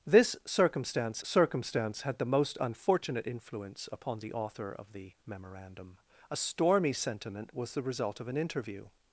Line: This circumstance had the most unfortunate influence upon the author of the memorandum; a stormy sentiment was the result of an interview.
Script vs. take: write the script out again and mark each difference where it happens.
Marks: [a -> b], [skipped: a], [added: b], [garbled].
This circumstance [added: circumstance] had the most unfortunate influence upon the author of the memorandum; a stormy sentiment was the result of an interview.